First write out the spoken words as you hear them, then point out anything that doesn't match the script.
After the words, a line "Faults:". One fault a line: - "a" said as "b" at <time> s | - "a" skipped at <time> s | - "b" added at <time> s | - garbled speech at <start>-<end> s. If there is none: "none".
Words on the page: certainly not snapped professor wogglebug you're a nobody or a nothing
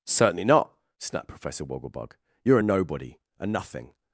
certainly not snapped professor wogglebug you're a nobody a nothing
Faults:
- "or" skipped at 3.2 s